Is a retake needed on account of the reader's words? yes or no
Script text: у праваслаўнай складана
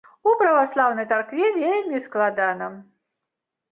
yes